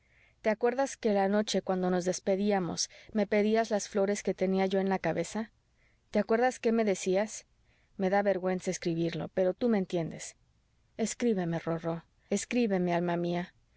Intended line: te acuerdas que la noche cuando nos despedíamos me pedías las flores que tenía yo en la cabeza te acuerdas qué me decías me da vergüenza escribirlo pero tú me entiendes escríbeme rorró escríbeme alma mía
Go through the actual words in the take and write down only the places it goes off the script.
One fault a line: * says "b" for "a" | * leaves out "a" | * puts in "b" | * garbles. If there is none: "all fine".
all fine